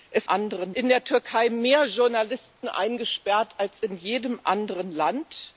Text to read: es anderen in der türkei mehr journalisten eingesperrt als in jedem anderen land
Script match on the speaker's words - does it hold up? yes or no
yes